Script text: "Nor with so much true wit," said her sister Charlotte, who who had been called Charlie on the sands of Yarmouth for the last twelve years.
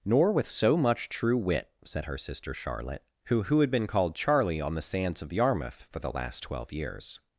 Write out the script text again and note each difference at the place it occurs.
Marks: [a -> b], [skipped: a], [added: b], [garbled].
"Nor with so much true wit," said her sister Charlotte, who who had been called Charlie on the sands of Yarmouth for the last twelve years.